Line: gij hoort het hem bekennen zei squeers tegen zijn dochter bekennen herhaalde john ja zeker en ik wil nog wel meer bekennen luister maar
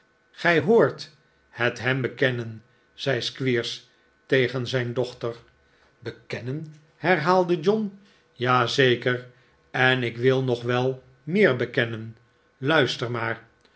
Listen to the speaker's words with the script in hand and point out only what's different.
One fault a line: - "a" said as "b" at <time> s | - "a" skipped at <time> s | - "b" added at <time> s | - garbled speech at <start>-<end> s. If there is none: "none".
none